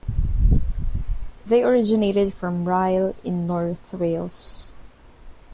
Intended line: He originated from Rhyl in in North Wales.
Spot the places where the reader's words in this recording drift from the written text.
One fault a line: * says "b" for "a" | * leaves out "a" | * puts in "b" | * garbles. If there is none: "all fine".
* says "They" for "He"
* leaves out "in"